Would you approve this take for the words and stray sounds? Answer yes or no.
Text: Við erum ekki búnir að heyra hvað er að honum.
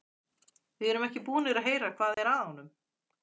no